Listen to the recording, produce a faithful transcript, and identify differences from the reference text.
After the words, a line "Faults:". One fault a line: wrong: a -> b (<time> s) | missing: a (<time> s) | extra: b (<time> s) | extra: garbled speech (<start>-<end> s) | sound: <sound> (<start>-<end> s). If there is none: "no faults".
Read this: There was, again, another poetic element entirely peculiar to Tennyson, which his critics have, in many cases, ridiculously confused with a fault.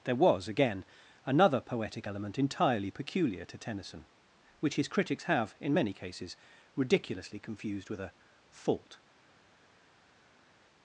There was, again, another poetic element entirely peculiar to Tennyson, which his critics have, in many cases, ridiculously confused with a fault.
Faults:
no faults